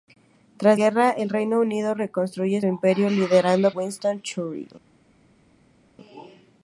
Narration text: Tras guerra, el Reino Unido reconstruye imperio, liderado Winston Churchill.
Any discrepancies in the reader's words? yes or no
no